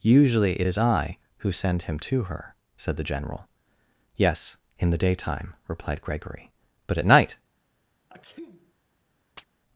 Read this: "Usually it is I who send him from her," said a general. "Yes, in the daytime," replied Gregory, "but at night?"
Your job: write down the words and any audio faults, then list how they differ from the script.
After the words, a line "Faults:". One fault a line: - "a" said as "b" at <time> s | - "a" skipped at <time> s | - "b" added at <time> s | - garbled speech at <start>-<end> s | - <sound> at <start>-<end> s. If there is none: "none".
"Usually it is I who send him to her," said the general. "Yes, in the daytime," replied Gregory, "but at night?"
Faults:
- "from" said as "to" at 2.0 s
- "a" said as "the" at 3.0 s
- sneeze at 8.1-8.7 s
- chirp at 9.4-9.5 s